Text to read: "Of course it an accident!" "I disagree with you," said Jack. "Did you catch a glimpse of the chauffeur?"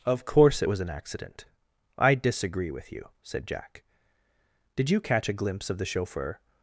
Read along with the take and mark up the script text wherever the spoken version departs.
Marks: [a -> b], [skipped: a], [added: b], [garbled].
"Of course it [added: was] an accident!" "I disagree with you," said Jack. "Did you catch a glimpse of the chauffeur?"